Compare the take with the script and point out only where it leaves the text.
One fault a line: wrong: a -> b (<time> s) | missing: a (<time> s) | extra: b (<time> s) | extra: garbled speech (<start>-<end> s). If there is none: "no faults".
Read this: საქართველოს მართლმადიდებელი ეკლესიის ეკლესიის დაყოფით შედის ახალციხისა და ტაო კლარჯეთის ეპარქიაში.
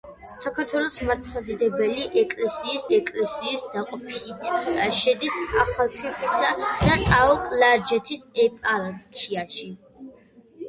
no faults